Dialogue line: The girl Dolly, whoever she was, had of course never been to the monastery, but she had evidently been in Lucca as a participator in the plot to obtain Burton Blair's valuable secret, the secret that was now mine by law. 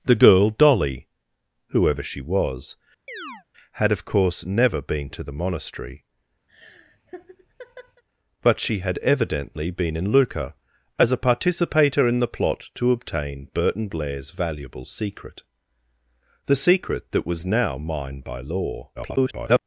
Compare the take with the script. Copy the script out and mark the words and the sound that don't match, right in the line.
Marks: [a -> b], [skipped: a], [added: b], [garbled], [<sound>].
The girl Dolly, whoever she was, [chirp] had of course never been to the monastery, [laugh] but she had evidently been in Lucca as a participator in the plot to obtain Burton Blair's valuable secret, the secret that was now mine by law. [garbled]